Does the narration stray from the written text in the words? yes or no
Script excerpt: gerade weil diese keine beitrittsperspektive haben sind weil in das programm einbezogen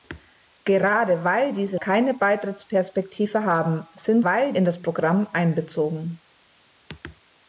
no